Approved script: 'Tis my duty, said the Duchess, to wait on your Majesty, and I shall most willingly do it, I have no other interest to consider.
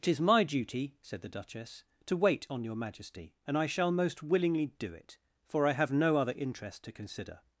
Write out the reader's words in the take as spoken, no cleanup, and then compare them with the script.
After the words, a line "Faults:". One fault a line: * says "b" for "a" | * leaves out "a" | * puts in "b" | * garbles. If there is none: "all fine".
'Tis my duty, said the Duchess, to wait on your Majesty, and I shall most willingly do it, for I have no other interest to consider.
Faults:
* puts in "for"